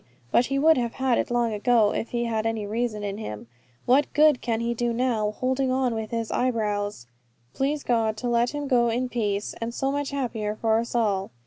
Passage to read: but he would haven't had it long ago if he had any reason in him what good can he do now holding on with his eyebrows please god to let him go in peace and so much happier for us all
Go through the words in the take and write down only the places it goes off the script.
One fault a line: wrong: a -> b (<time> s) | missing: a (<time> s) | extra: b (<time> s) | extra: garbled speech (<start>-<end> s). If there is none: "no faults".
wrong: haven't -> have (0.8 s)